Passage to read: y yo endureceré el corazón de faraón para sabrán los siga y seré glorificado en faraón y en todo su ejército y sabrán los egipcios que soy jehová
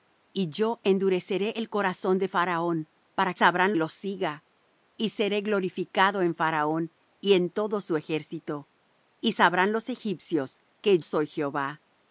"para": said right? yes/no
yes